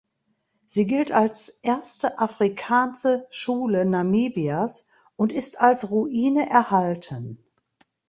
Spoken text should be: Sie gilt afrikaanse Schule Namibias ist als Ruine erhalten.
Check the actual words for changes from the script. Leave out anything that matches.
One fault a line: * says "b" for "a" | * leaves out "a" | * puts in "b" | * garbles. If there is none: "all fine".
* puts in "als erste"
* puts in "und"